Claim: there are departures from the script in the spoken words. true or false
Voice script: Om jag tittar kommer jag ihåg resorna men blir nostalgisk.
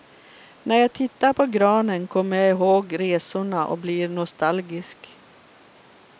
true